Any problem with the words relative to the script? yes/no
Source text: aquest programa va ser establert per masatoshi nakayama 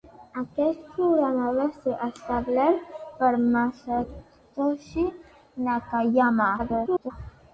yes